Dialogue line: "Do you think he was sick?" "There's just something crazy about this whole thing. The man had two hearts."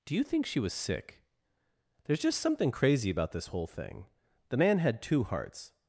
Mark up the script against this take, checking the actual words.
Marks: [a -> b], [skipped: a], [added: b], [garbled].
"Do you think [he -> she] was sick?" "There's just something crazy about this whole thing. The man had two hearts."